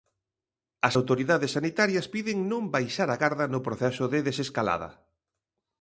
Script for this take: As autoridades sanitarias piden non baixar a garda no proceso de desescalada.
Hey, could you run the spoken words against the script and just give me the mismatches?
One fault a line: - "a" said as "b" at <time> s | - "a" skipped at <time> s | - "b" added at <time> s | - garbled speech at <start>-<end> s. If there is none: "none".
none